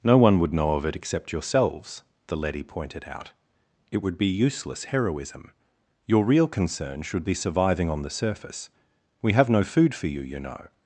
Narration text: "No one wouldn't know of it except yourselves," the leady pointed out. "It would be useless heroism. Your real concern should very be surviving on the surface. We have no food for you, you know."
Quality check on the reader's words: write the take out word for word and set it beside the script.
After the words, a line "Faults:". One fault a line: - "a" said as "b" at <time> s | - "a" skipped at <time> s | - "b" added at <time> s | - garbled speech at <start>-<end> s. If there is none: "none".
"No one would know of it except yourselves," the leady pointed out. "It would be useless heroism. Your real concern should be surviving on the surface. We have no food for you, you know."
Faults:
- "wouldn't" said as "would" at 0.4 s
- "very" skipped at 7.2 s